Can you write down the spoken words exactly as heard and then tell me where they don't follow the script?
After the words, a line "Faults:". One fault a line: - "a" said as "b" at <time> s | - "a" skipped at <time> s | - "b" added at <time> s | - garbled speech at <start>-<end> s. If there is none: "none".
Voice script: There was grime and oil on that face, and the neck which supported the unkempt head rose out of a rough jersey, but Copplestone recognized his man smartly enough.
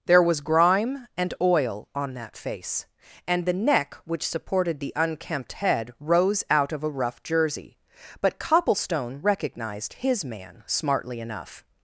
There was grime and oil on that face, and the neck which supported the unkempt head rose out of a rough jersey, but Copplestone recognized his man smartly enough.
Faults:
none